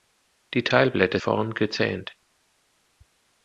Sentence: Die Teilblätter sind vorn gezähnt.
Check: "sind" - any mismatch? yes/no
yes